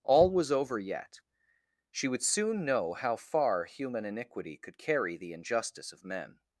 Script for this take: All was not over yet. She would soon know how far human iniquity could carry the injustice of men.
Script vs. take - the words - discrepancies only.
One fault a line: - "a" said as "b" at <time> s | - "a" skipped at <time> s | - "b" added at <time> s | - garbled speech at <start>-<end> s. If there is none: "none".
- "not" skipped at 0.5 s